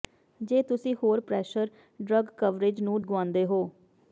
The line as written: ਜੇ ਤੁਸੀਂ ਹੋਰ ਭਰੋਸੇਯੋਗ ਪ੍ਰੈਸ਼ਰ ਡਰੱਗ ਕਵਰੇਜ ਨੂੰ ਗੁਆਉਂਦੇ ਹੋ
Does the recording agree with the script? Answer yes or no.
no